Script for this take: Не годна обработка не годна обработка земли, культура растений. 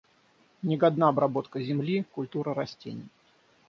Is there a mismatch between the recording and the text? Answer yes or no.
yes